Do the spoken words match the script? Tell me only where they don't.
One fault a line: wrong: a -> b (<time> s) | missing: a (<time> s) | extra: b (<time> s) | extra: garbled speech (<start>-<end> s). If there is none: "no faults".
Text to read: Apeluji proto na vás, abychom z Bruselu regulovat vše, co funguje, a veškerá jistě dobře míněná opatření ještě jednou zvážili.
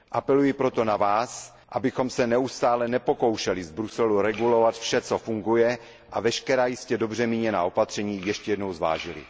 extra: se neustále nepokoušeli (2.1 s)